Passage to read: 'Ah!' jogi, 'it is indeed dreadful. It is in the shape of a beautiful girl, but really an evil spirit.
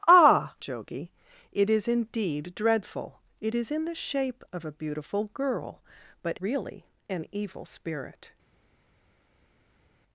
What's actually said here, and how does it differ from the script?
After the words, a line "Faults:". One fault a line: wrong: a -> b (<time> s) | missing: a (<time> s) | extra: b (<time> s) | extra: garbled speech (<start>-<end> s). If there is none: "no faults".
'Ah!' jogi, 'it is indeed dreadful. It is in the shape of a beautiful girl, but really an evil spirit.
Faults:
no faults